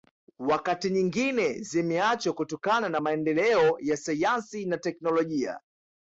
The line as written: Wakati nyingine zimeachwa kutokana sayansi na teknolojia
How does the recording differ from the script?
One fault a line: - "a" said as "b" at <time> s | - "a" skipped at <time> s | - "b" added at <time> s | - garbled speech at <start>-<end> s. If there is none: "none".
- "na maendeleo ya" added at 2.9 s